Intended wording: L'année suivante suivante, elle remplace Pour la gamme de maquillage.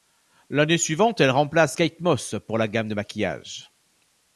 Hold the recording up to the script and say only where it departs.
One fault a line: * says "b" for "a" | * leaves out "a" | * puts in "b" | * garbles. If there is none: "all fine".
* leaves out "suivante"
* puts in "Kate Moss"